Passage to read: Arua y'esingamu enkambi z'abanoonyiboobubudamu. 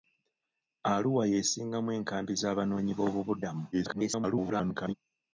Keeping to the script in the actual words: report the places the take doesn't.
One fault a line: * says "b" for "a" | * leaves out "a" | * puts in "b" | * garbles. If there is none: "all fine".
* garbles